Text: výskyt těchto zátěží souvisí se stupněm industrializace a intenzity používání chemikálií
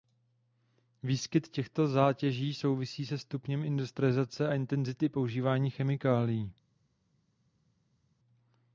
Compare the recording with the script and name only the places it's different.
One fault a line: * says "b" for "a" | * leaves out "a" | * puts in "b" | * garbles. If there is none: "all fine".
all fine